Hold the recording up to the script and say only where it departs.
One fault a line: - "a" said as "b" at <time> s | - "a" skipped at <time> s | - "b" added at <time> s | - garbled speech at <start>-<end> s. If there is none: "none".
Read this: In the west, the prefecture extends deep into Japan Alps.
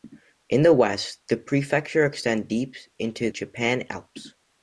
none